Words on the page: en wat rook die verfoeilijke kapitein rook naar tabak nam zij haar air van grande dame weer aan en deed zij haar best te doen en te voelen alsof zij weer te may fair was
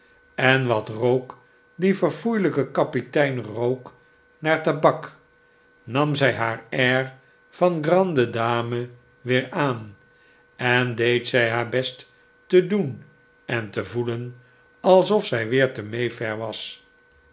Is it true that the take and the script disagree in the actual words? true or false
false